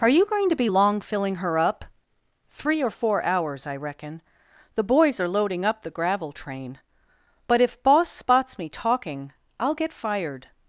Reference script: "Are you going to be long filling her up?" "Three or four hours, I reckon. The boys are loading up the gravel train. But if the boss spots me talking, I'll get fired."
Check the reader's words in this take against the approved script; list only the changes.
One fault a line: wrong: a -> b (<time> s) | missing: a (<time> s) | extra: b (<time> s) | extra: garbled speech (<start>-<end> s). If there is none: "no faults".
missing: the (7.8 s)